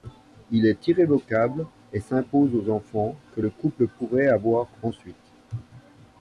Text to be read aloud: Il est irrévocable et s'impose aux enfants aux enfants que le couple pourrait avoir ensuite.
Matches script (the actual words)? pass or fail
fail